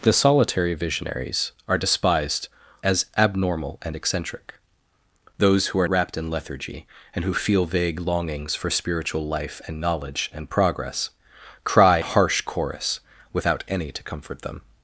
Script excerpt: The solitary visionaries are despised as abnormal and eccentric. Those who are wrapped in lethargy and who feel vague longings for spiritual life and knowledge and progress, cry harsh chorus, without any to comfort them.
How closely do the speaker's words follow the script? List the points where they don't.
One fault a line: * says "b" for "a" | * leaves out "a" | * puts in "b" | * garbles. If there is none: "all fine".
all fine